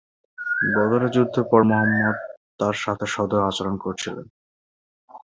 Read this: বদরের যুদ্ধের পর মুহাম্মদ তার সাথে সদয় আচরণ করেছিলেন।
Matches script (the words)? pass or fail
pass